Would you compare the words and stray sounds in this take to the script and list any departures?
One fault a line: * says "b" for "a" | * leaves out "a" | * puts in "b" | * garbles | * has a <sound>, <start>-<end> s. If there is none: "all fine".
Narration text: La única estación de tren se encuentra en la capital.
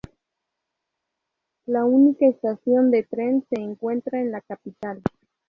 all fine